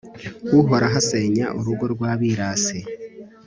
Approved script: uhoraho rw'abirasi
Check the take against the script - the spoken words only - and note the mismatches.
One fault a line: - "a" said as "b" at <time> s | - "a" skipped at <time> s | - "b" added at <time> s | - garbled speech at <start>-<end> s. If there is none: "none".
- "asenya urugo" added at 1.0 s